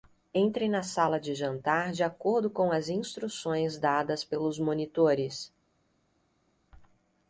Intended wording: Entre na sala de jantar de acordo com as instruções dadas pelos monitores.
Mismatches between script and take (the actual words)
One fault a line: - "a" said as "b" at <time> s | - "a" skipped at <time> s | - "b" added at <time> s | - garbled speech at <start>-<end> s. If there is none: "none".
none